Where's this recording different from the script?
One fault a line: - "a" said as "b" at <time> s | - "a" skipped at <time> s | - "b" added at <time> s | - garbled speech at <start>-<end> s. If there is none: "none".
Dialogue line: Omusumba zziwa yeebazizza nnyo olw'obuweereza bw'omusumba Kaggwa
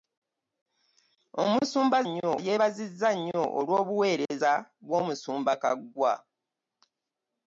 - "zziwa" said as "nnyo" at 2.1 s